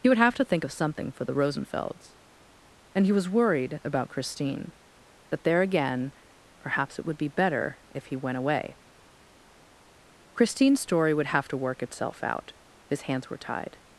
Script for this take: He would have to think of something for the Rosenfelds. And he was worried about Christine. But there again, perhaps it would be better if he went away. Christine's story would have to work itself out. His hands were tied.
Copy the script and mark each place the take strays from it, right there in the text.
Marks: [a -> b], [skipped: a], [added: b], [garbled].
He would have to think of something for the Rosenfelds. And he was worried about Christine. [But -> That] there again, perhaps it would be better if he went away. Christine's story would have to work itself out. His hands were tied.